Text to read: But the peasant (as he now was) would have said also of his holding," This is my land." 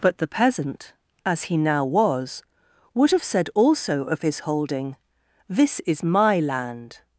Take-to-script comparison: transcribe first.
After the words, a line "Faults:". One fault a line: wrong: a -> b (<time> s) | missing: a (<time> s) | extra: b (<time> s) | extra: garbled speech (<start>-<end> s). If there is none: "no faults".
But the peasant (as he now was) would have said also of his holding," This is my land."
Faults:
no faults